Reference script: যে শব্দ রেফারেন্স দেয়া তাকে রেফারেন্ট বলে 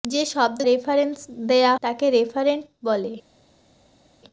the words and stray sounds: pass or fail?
pass